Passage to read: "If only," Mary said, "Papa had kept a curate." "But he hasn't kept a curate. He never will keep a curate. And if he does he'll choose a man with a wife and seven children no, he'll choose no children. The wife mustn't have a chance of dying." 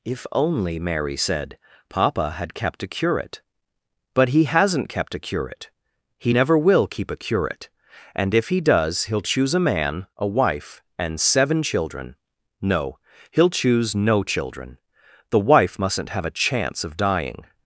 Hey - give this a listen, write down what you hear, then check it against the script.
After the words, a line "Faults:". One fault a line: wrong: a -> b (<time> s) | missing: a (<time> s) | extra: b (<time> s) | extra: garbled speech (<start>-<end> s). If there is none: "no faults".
"If only," Mary said, "Papa had kept a curate." "But he hasn't kept a curate. He never will keep a curate. And if he does he'll choose a man a wife and seven children no, he'll choose no children. The wife mustn't have a chance of dying."
Faults:
missing: with (10.1 s)